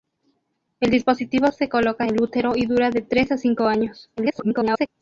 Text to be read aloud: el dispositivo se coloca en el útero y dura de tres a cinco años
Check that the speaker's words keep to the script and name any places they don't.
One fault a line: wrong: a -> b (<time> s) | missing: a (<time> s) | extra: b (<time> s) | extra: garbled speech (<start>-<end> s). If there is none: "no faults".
missing: en (2.0 s)
extra: garbled speech (4.2-4.9 s)